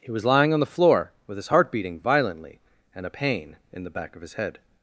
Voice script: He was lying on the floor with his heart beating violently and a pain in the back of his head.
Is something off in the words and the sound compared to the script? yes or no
no